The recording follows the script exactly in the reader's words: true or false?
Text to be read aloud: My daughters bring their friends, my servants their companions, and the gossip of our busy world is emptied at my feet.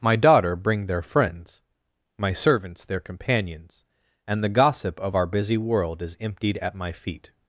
false